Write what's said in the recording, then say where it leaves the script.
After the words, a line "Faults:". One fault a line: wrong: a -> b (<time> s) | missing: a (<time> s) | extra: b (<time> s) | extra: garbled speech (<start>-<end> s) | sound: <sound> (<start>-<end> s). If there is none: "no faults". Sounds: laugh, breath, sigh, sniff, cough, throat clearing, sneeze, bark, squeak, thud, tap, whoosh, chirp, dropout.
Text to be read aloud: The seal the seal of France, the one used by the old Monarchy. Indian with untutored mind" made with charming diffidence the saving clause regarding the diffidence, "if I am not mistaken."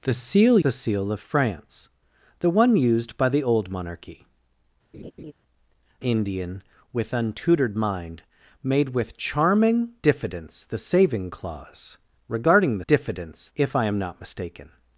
The seal the seal of France, the one used by the old Monarchy. Indian with untutored mind" made with charming diffidence the saving clause regarding the diffidence, "if I am not mistaken."
Faults:
sound: laugh (4.9-5.3 s)